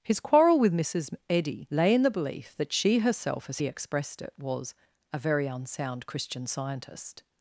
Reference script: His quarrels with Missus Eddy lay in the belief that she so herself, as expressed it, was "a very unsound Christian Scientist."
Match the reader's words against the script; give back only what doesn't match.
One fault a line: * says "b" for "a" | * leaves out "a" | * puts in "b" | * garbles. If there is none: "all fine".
* says "quarrel" for "quarrels"
* leaves out "so"
* puts in "he"